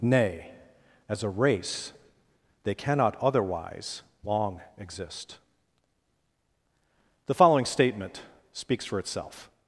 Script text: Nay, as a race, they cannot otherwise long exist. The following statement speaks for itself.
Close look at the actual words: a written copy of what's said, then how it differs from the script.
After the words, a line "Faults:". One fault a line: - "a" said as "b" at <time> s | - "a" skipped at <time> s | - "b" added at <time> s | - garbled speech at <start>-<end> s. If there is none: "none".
Nay, as a race, they cannot otherwise long exist. The following statement speaks for itself.
Faults:
none